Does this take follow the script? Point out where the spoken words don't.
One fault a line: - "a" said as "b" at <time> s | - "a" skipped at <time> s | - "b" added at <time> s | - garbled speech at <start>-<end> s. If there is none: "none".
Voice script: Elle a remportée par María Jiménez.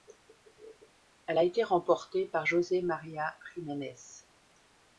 - "été" added at 1.4 s
- "José" added at 2.4 s